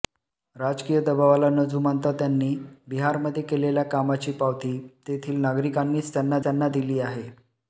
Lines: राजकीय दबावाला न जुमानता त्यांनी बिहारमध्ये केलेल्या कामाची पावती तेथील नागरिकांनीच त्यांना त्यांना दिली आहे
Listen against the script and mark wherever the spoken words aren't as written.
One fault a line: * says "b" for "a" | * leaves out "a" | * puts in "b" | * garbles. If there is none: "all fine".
all fine